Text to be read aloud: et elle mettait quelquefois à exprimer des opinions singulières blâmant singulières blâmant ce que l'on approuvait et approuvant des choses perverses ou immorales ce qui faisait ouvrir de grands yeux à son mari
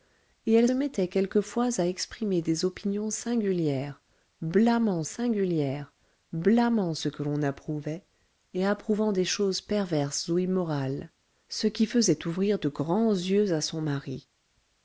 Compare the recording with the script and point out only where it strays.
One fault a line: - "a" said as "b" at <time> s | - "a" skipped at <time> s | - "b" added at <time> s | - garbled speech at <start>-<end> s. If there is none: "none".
none